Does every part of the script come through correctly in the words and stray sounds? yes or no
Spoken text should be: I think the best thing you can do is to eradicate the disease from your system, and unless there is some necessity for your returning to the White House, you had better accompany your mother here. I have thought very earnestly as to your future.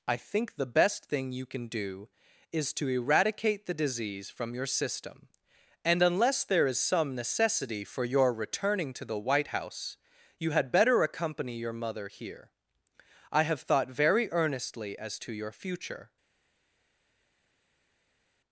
yes